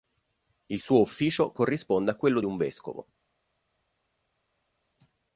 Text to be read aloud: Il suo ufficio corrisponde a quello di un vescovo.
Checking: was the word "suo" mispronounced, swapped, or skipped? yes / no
no